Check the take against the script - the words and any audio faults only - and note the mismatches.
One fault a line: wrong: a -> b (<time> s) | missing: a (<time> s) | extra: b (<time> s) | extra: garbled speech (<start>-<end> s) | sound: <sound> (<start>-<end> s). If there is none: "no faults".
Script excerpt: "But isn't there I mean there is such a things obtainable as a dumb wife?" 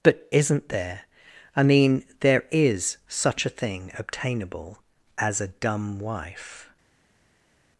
wrong: things -> thing (3.5 s)